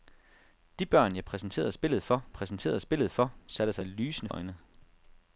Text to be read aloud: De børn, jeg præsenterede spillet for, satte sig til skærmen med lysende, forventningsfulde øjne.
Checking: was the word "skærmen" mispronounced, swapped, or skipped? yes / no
yes